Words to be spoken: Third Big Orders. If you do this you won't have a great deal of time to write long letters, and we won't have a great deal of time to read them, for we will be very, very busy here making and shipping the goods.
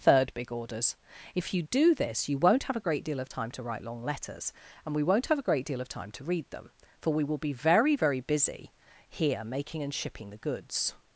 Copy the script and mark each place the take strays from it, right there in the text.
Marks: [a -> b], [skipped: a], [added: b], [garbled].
Third Big Orders. If you do this you won't have a great deal of time to write long letters, and we won't have a great deal of time to read them, for we will be very, very busy here making and shipping the goods.